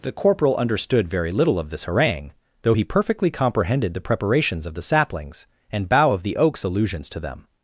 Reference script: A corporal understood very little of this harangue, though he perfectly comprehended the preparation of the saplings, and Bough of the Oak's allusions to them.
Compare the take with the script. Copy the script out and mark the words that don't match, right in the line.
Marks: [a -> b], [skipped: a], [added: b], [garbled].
[A -> The] corporal understood very little of this harangue, though he perfectly comprehended the [preparation -> preparations] of the saplings, and Bough of the Oak's allusions to them.